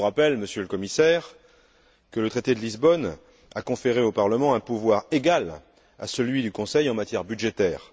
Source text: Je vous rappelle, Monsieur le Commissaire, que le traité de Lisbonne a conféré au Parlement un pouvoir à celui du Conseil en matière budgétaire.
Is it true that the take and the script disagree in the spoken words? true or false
true